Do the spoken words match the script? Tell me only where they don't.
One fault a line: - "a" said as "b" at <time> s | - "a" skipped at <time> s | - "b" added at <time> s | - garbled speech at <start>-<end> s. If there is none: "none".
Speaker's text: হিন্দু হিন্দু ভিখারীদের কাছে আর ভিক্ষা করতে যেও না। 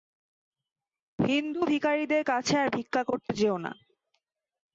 - "হিন্দু" skipped at 1.6 s